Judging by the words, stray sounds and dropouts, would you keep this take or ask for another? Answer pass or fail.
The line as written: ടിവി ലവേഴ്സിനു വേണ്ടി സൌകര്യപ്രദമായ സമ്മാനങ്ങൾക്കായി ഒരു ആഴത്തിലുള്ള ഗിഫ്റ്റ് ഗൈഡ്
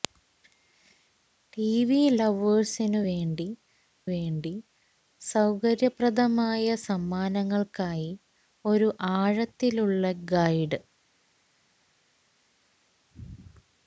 fail